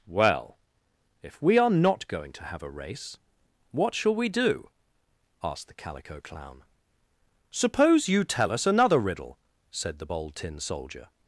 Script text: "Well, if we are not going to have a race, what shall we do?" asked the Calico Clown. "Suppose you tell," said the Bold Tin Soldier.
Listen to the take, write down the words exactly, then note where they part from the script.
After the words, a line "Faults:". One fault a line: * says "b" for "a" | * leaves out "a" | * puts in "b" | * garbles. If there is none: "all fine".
"Well, if we are not going to have a race, what shall we do?" asked the Calico Clown. "Suppose you tell us another riddle," said the Bold Tin Soldier.
Faults:
* puts in "us another riddle"